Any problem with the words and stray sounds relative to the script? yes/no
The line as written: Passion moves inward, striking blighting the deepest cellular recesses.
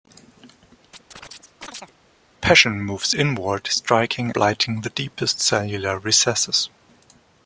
yes